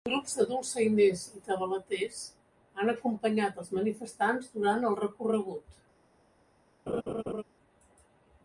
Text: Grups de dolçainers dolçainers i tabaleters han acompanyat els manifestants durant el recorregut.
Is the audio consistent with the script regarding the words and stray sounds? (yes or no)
no